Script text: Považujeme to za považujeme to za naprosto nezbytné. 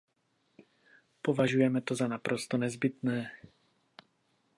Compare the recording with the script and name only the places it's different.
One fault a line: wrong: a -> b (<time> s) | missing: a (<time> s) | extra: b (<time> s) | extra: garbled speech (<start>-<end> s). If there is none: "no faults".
missing: považujeme to za (2.1 s)